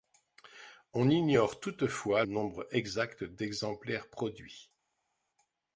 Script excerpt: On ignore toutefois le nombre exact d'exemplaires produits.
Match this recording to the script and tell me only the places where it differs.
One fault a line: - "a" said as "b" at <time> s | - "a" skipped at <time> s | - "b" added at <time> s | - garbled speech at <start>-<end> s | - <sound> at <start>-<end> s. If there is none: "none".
- "le" skipped at 2.2 s